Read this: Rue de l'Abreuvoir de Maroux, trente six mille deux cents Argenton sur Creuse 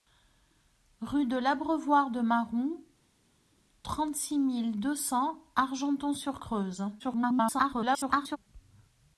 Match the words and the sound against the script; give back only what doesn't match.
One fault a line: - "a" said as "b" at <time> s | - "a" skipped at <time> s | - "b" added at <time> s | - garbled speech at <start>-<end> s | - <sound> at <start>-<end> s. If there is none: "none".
- garbled speech at 7.0-8.4 s